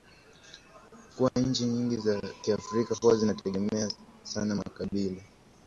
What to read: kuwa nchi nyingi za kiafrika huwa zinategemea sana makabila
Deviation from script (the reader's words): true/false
false